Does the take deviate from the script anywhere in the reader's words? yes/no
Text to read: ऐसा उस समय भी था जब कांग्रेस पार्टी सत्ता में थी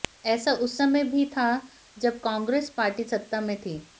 no